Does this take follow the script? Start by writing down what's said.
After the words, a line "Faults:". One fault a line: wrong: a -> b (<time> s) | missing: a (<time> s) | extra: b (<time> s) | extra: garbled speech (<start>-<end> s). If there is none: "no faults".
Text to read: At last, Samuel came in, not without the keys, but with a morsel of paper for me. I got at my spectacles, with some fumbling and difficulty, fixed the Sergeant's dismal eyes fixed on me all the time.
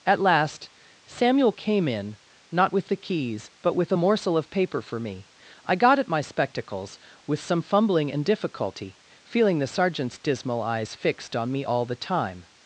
At last, Samuel came in, not with the keys, but with a morsel of paper for me. I got at my spectacles, with some fumbling and difficulty, feeling the Sergeant's dismal eyes fixed on me all the time.
Faults:
wrong: without -> with (2.7 s)
wrong: fixed -> feeling (9.2 s)